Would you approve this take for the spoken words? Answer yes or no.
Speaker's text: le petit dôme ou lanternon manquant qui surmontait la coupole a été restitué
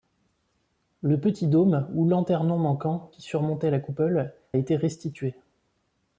no